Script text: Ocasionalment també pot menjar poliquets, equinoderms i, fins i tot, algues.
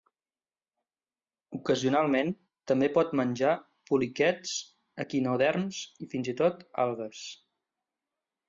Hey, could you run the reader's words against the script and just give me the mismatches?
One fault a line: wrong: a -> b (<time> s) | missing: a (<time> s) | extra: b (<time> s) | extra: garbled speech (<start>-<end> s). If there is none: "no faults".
no faults